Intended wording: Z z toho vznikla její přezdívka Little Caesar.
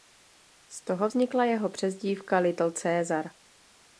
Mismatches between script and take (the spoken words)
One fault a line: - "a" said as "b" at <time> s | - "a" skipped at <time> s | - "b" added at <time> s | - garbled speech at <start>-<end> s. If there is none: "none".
- "z" skipped at 0.8 s
- "její" said as "jeho" at 1.4 s